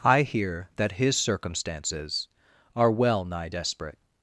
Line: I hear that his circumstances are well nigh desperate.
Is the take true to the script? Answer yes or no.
yes